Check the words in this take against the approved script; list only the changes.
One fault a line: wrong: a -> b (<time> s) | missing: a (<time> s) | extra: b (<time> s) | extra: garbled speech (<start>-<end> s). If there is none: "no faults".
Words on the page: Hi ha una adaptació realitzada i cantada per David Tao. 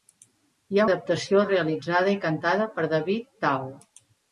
missing: una (0.9 s)